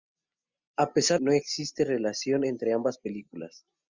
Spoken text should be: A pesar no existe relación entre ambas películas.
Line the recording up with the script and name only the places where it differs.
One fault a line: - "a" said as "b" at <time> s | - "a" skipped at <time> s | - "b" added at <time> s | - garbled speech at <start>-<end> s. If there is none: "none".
none